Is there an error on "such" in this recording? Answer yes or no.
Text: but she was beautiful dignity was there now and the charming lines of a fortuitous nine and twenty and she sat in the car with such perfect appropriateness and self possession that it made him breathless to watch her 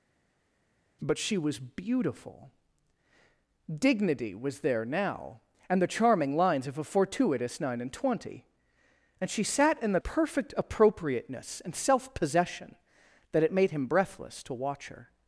yes